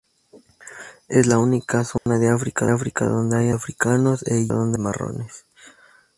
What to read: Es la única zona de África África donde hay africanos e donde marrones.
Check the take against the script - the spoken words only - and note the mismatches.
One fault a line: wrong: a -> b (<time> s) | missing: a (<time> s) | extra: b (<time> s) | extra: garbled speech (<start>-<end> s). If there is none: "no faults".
no faults